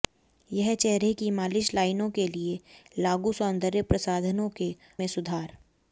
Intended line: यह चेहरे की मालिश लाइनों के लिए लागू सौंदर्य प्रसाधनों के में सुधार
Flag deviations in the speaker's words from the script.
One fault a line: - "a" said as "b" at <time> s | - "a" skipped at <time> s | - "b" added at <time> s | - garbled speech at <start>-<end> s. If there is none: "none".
none